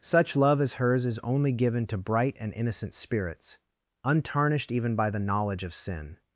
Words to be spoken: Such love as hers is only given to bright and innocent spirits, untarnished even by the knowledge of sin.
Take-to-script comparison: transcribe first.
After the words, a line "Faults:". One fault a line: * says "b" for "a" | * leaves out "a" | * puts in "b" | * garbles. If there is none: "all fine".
Such love as hers is only given to bright and innocent spirits, untarnished even by the knowledge of sin.
Faults:
all fine